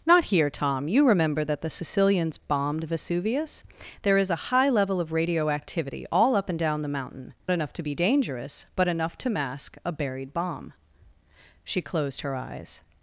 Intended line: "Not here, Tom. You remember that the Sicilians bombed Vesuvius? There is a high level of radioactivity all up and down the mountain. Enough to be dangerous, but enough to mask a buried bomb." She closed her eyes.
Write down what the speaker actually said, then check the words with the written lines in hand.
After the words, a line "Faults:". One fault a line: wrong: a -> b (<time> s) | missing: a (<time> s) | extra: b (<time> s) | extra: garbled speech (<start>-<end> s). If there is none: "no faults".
"Not here, Tom. You remember that the Sicilians bombed Vesuvius? There is a high level of radioactivity all up and down the mountain. Enough to be dangerous, but enough to mask a buried bomb." She closed her eyes.
Faults:
no faults